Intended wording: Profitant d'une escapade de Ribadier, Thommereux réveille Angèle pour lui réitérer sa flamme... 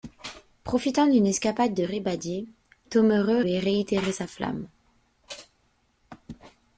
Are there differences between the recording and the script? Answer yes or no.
yes